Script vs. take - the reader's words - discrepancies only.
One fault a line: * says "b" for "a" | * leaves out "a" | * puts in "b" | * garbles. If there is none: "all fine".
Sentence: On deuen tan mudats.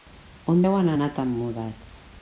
* puts in "anar"